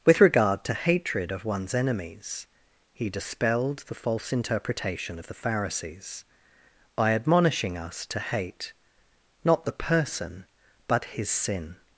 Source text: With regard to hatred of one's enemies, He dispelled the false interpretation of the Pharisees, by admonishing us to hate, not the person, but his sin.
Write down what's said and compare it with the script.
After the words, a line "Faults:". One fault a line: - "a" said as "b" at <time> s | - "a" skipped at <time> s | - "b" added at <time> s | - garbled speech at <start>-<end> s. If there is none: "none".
With regard to hatred of one's enemies, He dispelled the false interpretation of the Pharisees, by admonishing us to hate, not the person, but his sin.
Faults:
none